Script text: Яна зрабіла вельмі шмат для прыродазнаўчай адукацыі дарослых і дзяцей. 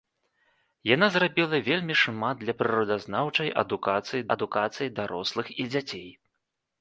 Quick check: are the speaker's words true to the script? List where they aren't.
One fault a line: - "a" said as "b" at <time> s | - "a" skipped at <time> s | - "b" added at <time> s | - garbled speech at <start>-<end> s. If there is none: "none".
- "адукацыі" added at 4.3 s